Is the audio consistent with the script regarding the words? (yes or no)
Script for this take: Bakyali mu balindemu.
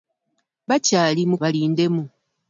yes